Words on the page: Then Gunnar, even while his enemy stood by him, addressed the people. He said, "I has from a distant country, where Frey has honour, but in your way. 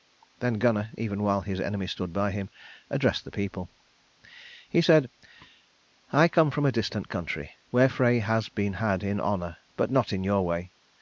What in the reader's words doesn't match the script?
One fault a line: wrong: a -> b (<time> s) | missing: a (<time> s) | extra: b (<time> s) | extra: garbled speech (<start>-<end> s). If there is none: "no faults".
wrong: has -> come (6.3 s)
extra: been had in (8.5 s)
extra: not (9.9 s)